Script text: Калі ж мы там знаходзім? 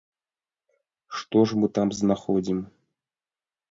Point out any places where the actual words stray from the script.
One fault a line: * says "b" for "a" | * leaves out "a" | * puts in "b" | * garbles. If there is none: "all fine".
* says "Што" for "Калі"